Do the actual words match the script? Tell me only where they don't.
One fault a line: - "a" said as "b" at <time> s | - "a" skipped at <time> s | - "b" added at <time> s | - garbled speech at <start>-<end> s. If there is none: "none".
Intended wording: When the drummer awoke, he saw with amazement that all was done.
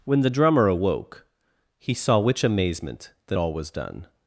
- "with" said as "which" at 2.2 s